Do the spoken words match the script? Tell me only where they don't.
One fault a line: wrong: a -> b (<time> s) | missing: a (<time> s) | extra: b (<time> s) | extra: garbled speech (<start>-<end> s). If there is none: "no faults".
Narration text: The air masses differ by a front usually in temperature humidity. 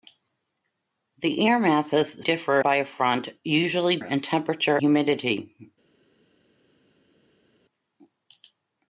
no faults